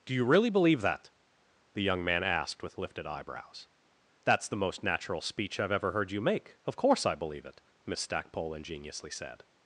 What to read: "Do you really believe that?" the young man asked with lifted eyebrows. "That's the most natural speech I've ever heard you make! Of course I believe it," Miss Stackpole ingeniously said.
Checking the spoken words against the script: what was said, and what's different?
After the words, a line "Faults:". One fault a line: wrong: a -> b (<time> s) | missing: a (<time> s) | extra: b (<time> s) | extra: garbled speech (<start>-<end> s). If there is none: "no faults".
"Do you really believe that?" the young man asked with lifted eyebrows. "That's the most natural speech I've ever heard you make! Of course I believe it," Miss Stackpole ingeniously said.
Faults:
no faults